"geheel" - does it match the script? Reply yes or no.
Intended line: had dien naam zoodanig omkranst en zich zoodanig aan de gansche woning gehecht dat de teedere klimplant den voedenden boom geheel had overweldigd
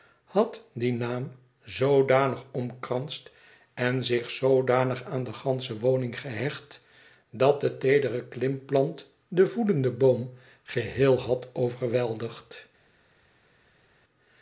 yes